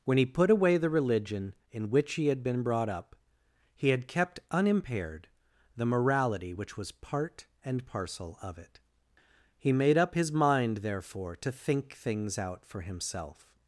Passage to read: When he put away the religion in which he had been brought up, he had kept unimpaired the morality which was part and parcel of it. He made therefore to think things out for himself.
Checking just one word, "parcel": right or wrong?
right